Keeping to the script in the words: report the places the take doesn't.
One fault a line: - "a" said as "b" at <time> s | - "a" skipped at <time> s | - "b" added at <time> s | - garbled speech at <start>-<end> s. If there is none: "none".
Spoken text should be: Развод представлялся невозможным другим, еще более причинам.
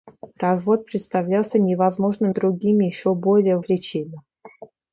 none